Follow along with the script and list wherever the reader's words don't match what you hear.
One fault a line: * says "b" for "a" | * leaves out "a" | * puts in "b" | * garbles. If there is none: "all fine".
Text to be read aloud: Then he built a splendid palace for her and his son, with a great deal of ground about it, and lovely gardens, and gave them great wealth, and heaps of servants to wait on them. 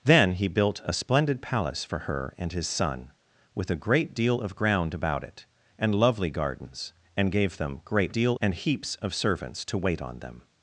* says "deal" for "wealth"